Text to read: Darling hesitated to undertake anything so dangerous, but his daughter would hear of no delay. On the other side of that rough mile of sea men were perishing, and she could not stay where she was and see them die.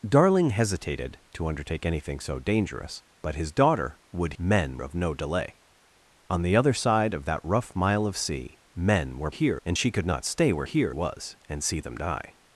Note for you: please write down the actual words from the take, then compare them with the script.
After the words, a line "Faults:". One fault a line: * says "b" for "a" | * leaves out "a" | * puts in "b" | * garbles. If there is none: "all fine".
Darling hesitated to undertake anything so dangerous, but his daughter would men of no delay. On the other side of that rough mile of sea men were hear, and she could not stay where hear was and see them die.
Faults:
* says "men" for "hear"
* says "hear" for "perishing"
* says "hear" for "she"